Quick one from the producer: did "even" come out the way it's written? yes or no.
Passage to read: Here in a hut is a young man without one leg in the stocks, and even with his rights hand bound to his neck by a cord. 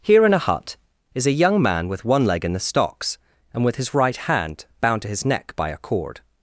no